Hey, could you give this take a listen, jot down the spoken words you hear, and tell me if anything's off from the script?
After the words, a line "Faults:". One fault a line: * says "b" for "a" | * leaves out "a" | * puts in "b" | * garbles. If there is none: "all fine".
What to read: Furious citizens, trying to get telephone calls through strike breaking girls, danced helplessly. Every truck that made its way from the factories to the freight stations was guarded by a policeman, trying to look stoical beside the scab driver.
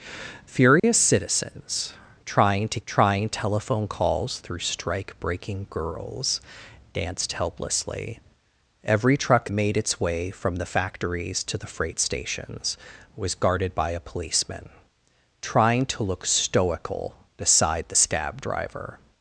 Furious citizens, trying to trying telephone calls through strike breaking girls, danced helplessly. Every truck made its way from the factories to the freight stations was guarded by a policeman, trying to look stoical beside the scab driver.
Faults:
* says "trying" for "get"
* leaves out "that"